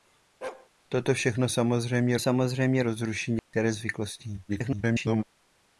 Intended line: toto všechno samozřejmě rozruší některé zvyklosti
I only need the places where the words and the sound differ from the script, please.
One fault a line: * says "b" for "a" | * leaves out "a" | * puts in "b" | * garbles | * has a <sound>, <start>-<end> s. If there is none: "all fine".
* has a bark, 0.4-0.7 s
* puts in "samozřejmě"
* has a dropout, 3.4-3.5 s
* garbles